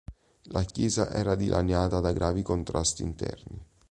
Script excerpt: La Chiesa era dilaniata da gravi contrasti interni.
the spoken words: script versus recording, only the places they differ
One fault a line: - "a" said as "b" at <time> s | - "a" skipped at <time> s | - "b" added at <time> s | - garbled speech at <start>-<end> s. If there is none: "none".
none